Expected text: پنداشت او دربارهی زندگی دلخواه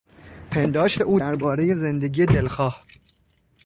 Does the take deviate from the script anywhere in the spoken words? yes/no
no